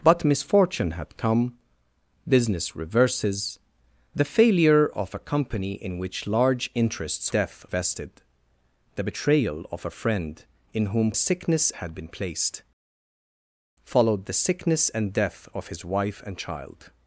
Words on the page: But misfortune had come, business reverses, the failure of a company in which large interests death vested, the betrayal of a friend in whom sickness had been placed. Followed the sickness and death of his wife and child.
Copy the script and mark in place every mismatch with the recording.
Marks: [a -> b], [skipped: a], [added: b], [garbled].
But misfortune had come, business reverses, the failure of a company in which large interests death vested, the betrayal of a friend in whom sickness had been placed. Followed the sickness and death of his wife and child.